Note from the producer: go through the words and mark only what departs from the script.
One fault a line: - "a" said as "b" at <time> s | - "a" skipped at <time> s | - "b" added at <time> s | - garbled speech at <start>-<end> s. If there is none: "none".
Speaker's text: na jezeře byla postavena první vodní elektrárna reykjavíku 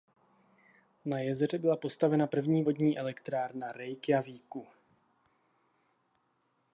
none